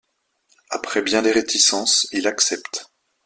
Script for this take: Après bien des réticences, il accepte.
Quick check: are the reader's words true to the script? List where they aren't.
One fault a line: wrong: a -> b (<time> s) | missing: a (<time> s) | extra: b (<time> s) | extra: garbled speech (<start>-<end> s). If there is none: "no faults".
no faults